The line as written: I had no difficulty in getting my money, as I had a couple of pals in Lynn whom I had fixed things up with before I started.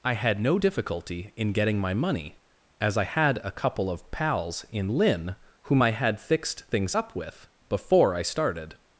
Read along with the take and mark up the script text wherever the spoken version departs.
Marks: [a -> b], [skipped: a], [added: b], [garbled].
I had no difficulty in getting my money, as I had a couple of pals in Lynn whom I had fixed things up with before I started.